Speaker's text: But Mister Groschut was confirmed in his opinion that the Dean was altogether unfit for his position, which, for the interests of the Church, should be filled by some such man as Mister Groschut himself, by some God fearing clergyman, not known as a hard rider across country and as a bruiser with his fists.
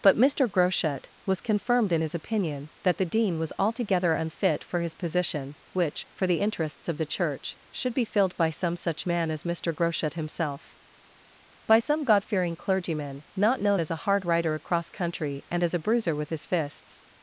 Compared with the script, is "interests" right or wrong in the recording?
right